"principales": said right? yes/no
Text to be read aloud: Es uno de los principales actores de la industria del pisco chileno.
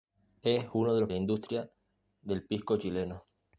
no